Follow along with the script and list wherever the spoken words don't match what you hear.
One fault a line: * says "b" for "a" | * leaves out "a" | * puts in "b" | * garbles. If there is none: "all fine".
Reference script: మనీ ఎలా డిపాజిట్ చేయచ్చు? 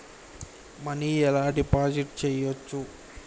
all fine